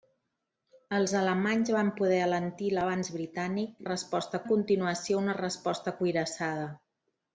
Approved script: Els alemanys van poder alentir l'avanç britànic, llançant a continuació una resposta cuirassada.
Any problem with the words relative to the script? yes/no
yes